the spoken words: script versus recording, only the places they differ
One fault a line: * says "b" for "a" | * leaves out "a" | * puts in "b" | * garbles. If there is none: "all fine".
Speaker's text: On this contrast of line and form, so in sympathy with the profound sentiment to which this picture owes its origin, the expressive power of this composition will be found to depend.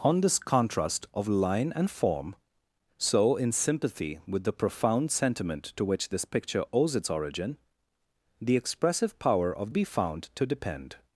* leaves out "this composition will"